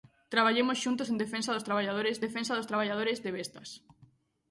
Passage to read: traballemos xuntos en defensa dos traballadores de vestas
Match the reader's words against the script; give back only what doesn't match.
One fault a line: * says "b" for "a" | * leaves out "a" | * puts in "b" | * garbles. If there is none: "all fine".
* puts in "defensa dos traballadores"